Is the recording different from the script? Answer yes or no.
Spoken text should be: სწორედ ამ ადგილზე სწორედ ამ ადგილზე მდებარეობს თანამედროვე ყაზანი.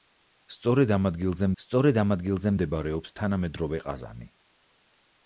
no